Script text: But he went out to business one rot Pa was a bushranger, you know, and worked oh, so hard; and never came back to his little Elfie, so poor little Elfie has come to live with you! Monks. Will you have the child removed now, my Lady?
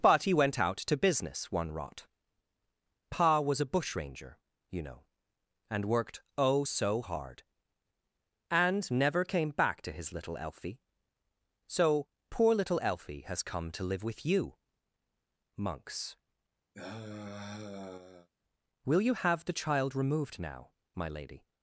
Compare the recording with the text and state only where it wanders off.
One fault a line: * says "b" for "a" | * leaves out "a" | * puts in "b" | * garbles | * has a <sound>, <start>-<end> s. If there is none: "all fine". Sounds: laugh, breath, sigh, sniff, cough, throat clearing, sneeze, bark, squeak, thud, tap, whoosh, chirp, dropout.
* has a sigh, 16.7-18.3 s